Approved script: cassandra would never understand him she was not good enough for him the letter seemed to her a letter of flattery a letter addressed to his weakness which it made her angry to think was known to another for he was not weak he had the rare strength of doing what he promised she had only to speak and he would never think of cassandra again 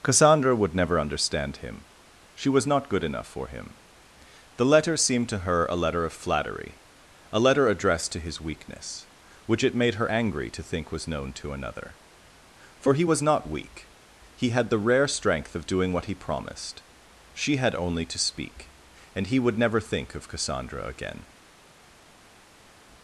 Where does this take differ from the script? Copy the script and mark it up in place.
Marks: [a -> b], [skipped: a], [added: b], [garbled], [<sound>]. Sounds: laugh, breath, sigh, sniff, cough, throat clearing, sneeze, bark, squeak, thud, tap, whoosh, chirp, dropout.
cassandra would never understand him she was not good enough for him the letter seemed to her a letter of flattery a letter addressed to his weakness which it made her angry to think was known to another for he was not weak he had the rare strength of doing what he promised she had only to speak and he would never think of cassandra again